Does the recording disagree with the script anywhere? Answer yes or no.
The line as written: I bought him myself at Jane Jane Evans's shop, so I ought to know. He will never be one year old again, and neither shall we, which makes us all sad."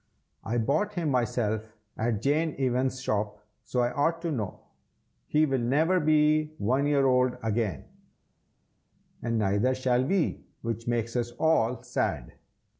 yes